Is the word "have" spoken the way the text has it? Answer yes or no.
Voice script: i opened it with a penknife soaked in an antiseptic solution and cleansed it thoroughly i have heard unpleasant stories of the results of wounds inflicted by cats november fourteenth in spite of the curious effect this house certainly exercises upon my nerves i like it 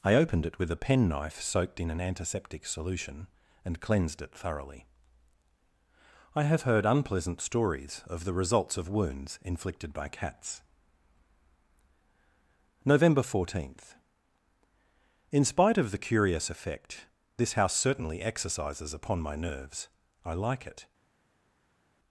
yes